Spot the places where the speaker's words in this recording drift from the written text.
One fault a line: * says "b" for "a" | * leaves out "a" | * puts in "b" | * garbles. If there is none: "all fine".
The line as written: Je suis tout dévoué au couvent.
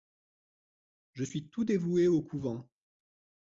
all fine